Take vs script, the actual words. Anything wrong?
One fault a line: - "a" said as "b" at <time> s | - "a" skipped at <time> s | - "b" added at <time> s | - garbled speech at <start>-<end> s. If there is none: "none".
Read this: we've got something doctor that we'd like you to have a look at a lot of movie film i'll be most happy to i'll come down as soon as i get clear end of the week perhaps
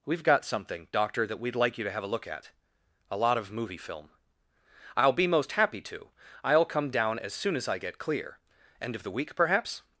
none